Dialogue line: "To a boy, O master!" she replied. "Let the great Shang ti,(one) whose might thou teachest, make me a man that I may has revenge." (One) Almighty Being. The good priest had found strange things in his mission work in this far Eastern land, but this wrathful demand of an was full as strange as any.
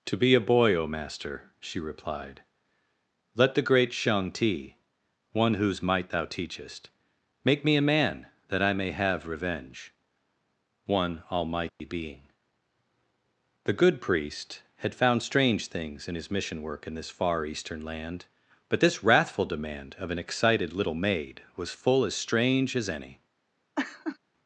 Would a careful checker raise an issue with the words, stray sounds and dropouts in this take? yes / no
yes